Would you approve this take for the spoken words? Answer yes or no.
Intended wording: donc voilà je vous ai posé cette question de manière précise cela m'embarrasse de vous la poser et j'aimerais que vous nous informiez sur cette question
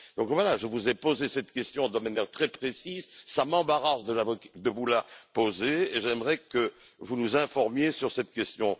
no